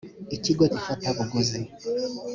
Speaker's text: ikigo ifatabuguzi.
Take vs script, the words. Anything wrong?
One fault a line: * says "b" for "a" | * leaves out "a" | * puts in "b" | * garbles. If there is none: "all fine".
all fine